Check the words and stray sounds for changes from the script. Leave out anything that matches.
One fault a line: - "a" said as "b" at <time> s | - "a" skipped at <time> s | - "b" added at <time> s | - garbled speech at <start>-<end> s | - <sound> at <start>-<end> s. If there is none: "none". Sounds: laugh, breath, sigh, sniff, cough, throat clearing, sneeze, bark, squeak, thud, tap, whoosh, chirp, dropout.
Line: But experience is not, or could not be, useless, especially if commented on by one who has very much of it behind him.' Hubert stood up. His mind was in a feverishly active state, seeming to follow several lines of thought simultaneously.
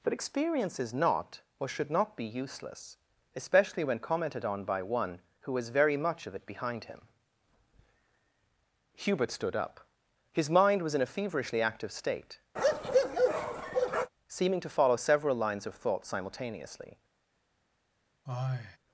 - "could" said as "should" at 1.7 s
- "if" said as "when" at 3.8 s
- bark at 12.6-14.1 s
- sigh at 18.3-18.8 s